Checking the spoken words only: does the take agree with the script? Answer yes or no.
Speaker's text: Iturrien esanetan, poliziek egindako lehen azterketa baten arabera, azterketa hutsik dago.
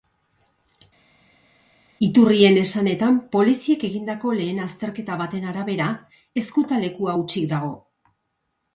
no